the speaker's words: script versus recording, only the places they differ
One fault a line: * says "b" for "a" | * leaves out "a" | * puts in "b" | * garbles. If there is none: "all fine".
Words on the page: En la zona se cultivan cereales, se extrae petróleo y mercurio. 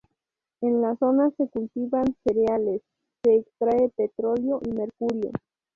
all fine